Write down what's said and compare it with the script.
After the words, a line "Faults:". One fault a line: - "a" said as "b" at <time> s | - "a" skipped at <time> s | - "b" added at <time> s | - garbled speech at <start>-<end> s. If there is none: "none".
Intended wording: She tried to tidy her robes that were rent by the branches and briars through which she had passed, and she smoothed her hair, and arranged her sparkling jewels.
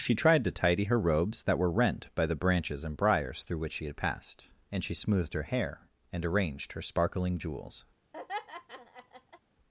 She tried to tidy her robes that were rent by the branches and briars through which she had passed, and she smoothed her hair, and arranged her sparkling jewels.
Faults:
none